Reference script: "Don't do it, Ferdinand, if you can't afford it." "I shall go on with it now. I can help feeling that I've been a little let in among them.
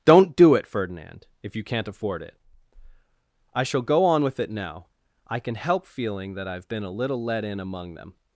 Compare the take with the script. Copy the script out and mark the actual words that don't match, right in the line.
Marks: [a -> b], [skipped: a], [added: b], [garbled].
"Don't do it, Ferdinand, if you can't afford it." "I shall go on with it now. I can help feeling that I've been a little let in among them.